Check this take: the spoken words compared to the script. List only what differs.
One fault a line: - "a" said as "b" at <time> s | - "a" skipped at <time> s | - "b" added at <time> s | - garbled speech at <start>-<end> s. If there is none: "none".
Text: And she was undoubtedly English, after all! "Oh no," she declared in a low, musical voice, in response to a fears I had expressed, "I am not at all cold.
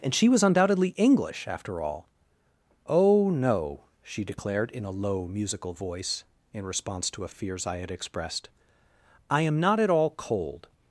none